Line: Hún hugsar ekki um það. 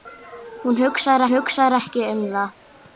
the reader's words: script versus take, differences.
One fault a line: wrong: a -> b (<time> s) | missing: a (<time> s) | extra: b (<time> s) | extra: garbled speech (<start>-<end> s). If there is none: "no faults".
extra: hugsar (1.3 s)